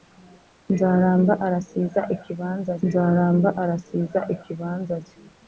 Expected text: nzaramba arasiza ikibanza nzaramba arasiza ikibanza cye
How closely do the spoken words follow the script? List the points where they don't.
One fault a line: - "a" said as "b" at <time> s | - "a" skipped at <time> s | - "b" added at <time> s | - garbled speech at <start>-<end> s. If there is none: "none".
none